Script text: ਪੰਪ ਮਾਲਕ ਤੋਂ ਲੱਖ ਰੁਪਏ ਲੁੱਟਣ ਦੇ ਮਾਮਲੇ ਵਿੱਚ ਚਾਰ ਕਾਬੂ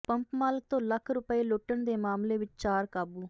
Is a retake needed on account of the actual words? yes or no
no